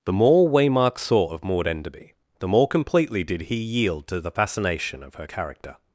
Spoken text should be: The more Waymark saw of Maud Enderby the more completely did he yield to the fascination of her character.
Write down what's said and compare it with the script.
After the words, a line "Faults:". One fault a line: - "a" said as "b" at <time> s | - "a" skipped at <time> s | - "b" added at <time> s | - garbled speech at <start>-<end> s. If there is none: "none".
The more Waymark saw of Maud Enderby the more completely did he yield to the fascination of her character.
Faults:
none